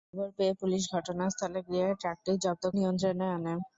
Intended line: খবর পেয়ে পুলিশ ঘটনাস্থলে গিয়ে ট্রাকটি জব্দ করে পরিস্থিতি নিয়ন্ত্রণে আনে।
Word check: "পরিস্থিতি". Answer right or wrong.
wrong